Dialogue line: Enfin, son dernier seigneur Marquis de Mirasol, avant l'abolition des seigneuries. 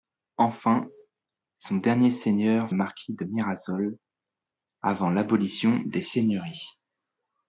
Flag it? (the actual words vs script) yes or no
no